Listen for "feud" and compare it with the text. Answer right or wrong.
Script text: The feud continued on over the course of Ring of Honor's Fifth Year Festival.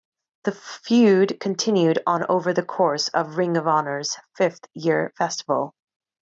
right